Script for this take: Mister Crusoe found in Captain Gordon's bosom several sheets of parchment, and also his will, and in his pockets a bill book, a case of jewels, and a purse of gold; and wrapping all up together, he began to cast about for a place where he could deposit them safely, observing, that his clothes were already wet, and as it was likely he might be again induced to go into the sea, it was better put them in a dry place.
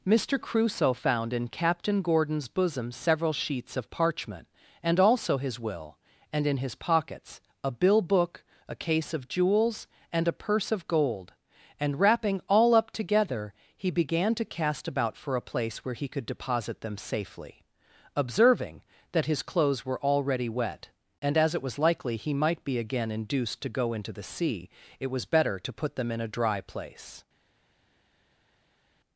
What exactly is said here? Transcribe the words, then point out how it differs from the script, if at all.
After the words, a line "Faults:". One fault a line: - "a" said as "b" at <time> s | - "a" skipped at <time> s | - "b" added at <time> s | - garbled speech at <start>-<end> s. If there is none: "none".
Mister Crusoe found in Captain Gordon's bosom several sheets of parchment, and also his will, and in his pockets a bill book, a case of jewels, and a purse of gold; and wrapping all up together, he began to cast about for a place where he could deposit them safely, observing, that his clothes were already wet, and as it was likely he might be again induced to go into the sea, it was better to put them in a dry place.
Faults:
- "to" added at 25.6 s